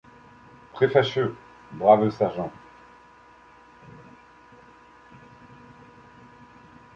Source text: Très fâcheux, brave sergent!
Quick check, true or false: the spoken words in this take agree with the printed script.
true